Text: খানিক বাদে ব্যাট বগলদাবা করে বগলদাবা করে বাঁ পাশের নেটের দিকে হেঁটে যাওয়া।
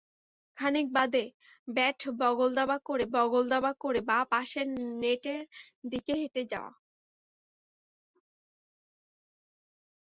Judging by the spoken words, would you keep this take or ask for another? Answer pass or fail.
pass